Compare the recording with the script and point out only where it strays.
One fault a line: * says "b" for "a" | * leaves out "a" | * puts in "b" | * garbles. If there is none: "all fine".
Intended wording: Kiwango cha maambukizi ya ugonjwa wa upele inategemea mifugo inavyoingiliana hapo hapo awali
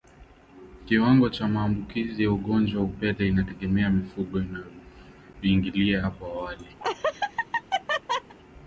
* leaves out "hapo"